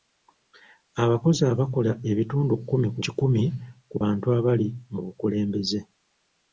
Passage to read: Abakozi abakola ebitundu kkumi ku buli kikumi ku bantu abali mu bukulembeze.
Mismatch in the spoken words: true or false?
true